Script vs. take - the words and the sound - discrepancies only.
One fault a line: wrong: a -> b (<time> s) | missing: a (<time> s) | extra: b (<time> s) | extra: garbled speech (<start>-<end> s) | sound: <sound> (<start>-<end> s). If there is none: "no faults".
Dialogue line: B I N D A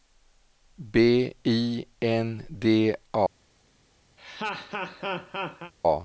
sound: laugh (4.2-5.7 s)